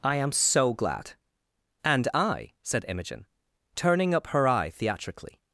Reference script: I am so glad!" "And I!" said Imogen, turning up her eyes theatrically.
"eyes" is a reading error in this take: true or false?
true